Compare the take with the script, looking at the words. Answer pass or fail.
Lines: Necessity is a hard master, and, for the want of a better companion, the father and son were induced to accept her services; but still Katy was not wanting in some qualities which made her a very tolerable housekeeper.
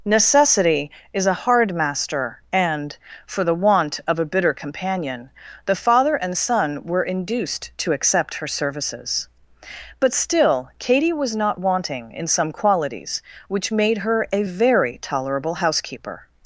fail